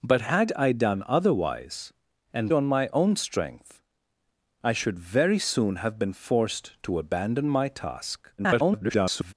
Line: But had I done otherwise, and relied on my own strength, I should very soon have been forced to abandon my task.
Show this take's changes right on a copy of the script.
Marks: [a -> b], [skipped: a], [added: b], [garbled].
But had I done otherwise, and [skipped: relied] on my own strength, I should very soon have been forced to abandon my task. [garbled]